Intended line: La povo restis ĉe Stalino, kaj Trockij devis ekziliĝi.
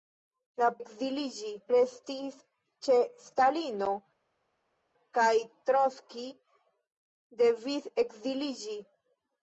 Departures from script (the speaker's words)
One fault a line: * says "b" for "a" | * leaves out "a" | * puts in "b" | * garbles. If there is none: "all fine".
* says "ekziliĝi" for "povo"